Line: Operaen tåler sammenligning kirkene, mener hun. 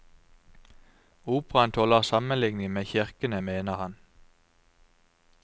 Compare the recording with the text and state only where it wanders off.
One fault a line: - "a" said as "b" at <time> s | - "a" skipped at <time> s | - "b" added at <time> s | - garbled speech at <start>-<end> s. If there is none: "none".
- "med" added at 2.7 s
- "hun" said as "han" at 3.7 s